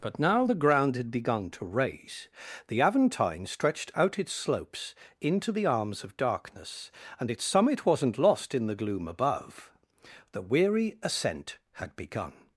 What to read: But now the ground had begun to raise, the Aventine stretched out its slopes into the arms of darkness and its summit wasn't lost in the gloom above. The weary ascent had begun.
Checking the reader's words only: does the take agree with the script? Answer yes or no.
yes